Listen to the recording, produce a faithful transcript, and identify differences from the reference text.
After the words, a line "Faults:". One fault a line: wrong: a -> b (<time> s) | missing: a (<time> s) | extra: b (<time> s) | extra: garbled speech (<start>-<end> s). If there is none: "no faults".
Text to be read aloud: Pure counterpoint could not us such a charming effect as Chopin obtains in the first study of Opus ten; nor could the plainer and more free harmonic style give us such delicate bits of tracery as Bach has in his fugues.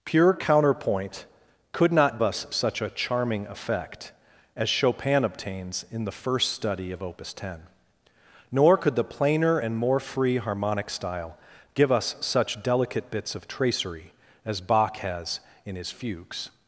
Pure counterpoint could not us such a charming effect as Chopin obtains in the first study of Opus ten; nor could the plainer and more free harmonic style give us such delicate bits of tracery as Bach has in his fugues.
Faults:
no faults